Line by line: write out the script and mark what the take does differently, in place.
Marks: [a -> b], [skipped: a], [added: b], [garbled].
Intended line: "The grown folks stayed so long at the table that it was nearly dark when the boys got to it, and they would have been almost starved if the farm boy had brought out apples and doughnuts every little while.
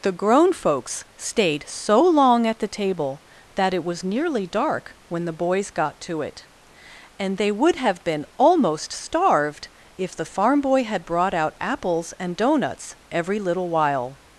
"The grown folks stayed so long at the table that it was nearly dark when the boys got to it, and they would have been almost starved if the farm boy had brought out apples and doughnuts every little while.